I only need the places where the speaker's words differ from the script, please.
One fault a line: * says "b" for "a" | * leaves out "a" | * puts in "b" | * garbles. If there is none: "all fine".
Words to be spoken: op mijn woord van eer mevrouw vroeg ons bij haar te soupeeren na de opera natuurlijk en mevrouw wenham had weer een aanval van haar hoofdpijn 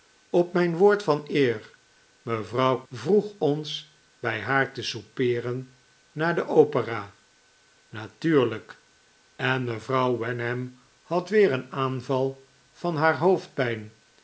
all fine